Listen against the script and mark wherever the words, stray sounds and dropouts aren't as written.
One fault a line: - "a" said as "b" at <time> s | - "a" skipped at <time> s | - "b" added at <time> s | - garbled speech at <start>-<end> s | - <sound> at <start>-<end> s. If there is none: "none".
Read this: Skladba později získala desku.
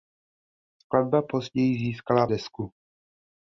none